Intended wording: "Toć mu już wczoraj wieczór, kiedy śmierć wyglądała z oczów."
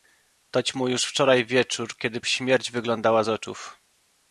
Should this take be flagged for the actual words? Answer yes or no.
no